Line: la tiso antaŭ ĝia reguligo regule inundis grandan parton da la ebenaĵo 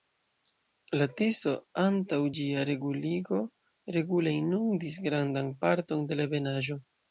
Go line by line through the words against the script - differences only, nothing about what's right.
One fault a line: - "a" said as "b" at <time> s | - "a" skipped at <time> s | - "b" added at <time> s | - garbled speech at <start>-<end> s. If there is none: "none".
- "da" said as "de" at 6.1 s